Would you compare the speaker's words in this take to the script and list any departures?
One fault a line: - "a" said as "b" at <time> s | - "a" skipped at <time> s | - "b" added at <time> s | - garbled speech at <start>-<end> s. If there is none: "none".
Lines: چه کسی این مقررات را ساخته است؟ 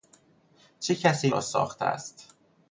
- "مقررات" skipped at 1.4 s